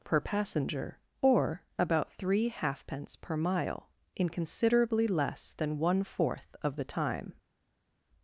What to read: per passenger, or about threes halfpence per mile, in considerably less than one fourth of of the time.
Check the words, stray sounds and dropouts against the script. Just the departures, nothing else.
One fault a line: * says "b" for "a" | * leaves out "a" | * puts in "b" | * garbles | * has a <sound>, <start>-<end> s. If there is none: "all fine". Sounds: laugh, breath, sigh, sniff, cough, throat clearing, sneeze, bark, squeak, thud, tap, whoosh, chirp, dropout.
* says "three" for "threes"
* leaves out "of"